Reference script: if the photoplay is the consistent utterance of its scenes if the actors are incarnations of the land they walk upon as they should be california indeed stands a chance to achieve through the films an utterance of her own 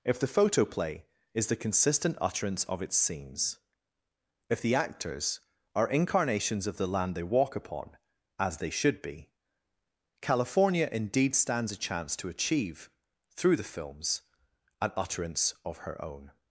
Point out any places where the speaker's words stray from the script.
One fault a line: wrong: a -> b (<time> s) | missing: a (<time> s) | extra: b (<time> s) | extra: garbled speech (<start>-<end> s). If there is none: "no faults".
no faults